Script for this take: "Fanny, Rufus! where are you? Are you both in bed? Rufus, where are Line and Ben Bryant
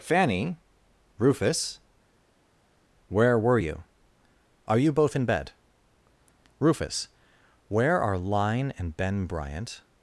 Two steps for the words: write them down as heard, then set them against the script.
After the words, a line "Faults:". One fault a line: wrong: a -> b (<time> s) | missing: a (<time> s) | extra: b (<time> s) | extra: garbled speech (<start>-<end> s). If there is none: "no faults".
"Fanny, Rufus! where were you? Are you both in bed? Rufus, where are Line and Ben Bryant
Faults:
wrong: are -> were (3.4 s)